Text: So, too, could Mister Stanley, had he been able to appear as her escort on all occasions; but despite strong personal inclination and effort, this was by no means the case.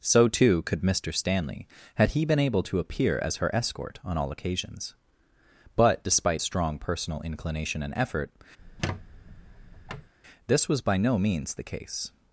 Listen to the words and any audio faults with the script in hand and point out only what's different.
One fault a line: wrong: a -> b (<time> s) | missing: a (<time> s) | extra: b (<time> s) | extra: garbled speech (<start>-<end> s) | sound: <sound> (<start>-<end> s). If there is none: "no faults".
sound: squeak (8.6-10.1 s)